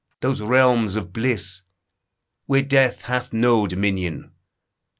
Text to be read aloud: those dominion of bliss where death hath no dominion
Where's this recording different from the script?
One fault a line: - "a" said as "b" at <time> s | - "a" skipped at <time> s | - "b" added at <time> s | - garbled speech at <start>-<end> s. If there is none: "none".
- "dominion" said as "realms" at 0.4 s